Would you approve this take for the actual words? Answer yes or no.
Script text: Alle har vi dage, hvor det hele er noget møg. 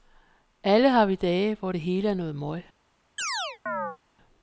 yes